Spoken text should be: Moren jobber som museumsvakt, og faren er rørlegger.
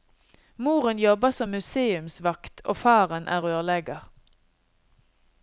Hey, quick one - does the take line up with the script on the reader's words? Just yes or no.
yes